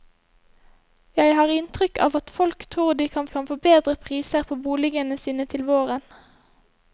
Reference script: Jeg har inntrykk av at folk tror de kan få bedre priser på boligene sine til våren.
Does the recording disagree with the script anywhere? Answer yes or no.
yes